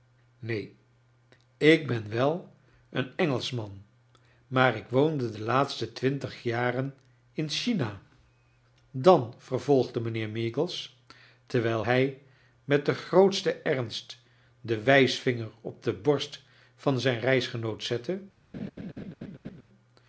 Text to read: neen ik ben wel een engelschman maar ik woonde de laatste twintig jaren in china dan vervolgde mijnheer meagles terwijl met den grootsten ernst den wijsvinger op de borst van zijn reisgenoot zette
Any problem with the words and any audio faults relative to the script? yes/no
yes